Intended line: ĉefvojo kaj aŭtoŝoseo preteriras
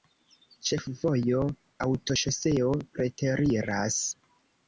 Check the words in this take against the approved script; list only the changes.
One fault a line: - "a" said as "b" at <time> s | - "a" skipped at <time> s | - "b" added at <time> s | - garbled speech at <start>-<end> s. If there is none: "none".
- "kaj" skipped at 1.4 s